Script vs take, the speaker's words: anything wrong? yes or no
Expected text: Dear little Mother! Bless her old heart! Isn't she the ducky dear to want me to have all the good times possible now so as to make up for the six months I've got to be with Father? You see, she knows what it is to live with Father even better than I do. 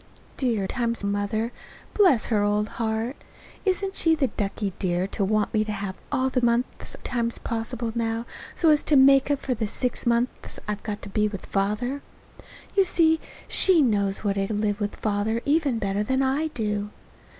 yes